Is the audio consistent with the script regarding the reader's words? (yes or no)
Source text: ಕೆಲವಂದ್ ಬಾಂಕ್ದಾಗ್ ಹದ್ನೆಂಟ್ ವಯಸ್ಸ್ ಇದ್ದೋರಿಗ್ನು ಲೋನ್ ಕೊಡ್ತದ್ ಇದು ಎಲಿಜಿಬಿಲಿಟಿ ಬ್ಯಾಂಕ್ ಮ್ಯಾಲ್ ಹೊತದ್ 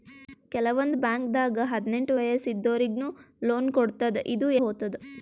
no